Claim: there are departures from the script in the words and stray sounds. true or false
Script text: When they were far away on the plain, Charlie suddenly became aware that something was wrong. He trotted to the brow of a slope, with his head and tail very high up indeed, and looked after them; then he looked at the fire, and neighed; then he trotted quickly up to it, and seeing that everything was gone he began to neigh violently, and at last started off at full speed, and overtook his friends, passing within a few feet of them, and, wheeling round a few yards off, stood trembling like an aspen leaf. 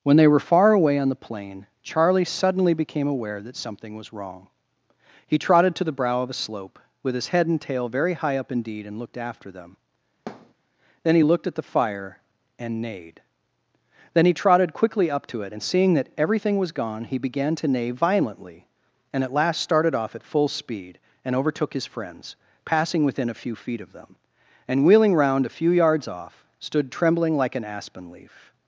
true